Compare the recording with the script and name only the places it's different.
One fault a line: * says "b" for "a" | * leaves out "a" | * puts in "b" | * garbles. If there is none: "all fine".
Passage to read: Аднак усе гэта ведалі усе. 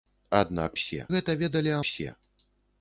all fine